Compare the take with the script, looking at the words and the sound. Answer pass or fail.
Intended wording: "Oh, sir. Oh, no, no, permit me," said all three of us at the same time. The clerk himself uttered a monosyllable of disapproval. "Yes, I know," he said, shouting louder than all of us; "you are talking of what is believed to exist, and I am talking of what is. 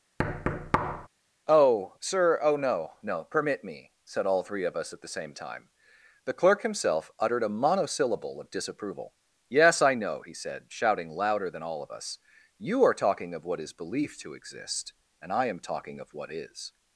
fail